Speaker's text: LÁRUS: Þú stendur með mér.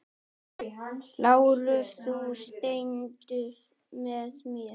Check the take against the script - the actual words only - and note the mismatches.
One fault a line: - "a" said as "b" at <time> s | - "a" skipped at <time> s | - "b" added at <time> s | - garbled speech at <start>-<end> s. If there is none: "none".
none